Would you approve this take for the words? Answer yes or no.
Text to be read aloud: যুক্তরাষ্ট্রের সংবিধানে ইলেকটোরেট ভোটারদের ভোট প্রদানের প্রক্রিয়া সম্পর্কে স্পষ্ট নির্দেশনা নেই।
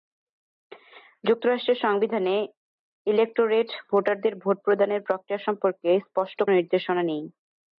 yes